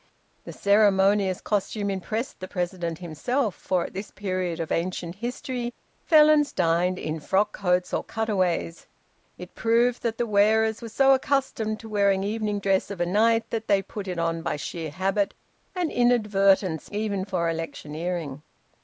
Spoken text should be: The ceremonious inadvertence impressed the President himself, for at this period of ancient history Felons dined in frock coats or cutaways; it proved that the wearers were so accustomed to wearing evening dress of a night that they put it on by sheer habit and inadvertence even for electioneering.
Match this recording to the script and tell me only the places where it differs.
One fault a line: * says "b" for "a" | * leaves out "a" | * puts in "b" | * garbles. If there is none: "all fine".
* says "costume" for "inadvertence"